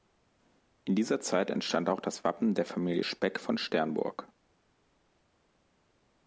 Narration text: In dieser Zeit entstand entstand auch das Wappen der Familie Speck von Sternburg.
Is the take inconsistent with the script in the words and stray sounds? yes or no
yes